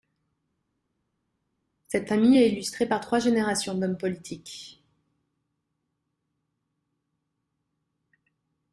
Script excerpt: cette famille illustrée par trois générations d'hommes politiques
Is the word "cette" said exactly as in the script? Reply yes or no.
yes